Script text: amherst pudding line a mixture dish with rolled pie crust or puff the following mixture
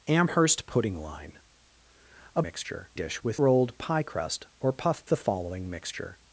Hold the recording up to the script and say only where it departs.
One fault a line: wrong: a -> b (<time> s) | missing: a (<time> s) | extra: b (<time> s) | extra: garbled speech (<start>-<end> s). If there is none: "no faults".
no faults